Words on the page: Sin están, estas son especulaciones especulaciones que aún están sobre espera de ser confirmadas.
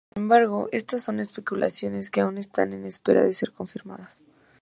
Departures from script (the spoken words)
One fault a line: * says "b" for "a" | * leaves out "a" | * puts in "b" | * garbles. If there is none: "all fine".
* says "embargo" for "están"
* leaves out "especulaciones"
* says "en" for "sobre"